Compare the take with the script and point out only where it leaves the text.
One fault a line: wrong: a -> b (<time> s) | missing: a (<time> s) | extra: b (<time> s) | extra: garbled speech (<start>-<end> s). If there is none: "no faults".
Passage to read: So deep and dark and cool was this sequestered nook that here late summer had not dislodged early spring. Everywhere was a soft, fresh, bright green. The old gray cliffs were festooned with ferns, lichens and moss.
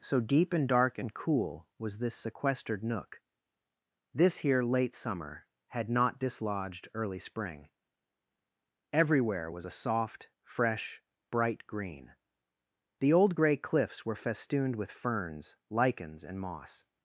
wrong: that -> this (4.1 s)